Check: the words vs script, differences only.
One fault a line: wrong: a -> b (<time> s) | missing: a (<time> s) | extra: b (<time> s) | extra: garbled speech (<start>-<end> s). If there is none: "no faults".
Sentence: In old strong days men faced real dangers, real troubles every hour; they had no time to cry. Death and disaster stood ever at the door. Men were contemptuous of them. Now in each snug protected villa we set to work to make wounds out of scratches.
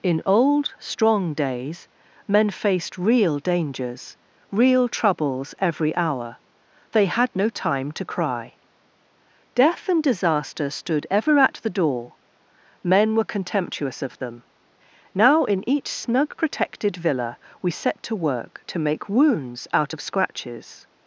no faults